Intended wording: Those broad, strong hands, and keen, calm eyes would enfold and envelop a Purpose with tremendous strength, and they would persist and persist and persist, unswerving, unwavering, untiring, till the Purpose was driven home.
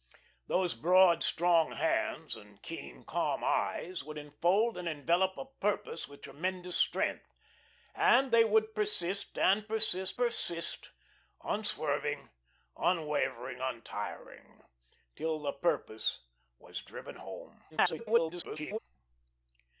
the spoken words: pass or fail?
fail